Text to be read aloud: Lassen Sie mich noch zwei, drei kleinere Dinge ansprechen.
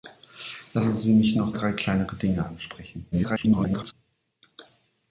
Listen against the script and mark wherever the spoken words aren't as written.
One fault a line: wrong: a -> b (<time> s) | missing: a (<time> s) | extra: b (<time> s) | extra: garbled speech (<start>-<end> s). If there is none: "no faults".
missing: zwei (1.5 s)
extra: garbled speech (3.1-3.9 s)